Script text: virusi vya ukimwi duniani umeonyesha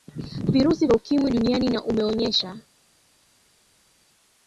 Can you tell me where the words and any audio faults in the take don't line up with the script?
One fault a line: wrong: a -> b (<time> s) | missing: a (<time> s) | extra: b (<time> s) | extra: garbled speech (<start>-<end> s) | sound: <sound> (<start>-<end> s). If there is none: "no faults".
extra: na (1.7 s)